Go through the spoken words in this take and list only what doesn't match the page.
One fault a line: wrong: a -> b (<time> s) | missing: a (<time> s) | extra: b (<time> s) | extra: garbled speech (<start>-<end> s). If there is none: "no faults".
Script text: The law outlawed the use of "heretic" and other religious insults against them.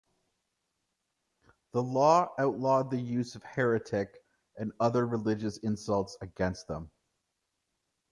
no faults